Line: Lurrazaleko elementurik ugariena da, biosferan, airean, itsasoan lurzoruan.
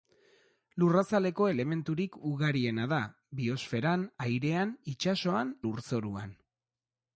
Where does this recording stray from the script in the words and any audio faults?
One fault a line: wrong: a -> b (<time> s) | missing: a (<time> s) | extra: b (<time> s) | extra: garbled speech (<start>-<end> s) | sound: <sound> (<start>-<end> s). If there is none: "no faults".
no faults